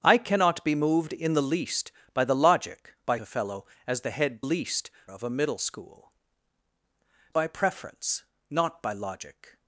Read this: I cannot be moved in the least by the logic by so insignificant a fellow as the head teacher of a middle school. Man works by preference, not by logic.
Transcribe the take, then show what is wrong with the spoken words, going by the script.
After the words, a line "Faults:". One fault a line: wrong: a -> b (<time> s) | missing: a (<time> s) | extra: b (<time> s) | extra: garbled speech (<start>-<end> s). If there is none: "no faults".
I cannot be moved in the least by the logic by a fellow as the head least of a middle school. By preference, not by logic.
Faults:
missing: so insignificant (3.2 s)
wrong: teacher -> least (4.4 s)
missing: Man works (6.1 s)